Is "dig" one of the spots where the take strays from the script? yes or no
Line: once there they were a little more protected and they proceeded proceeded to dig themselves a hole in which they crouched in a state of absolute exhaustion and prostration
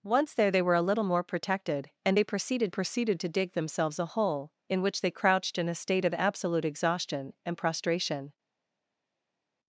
no